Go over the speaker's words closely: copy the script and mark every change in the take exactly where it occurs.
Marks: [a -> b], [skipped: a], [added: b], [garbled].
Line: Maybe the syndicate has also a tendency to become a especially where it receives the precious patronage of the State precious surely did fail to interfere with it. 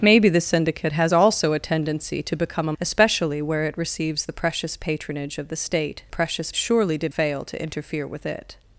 Maybe the syndicate has also a tendency to become a especially where it receives the precious patronage of the State precious surely did fail to interfere with it.